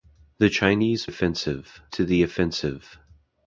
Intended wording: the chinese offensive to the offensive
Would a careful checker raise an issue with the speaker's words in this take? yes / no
no